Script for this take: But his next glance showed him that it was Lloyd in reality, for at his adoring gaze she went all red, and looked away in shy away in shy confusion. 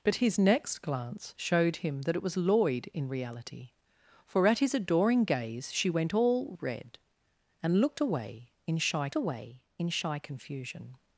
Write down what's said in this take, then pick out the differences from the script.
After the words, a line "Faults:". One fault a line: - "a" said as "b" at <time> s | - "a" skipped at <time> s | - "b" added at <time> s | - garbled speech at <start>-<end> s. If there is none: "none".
But his next glance showed him that it was Lloyd in reality, for at his adoring gaze she went all red, and looked away in shy away in shy confusion.
Faults:
none